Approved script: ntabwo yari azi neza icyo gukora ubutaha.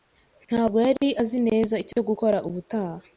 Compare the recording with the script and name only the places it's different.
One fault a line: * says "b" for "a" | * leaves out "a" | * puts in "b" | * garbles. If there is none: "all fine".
all fine